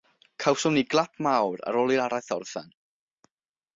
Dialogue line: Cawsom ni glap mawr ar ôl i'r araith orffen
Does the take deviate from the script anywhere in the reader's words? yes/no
no